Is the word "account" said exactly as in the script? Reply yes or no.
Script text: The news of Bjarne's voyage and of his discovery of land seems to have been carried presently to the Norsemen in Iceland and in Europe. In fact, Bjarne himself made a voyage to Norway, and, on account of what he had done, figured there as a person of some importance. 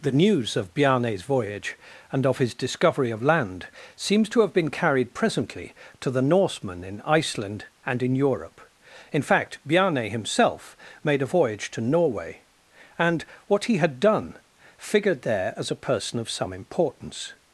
no